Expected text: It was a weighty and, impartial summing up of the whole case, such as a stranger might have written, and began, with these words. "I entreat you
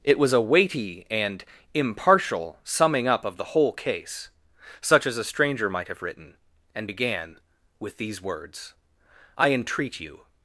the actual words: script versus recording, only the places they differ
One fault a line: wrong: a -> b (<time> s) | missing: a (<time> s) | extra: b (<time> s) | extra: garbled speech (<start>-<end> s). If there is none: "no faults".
no faults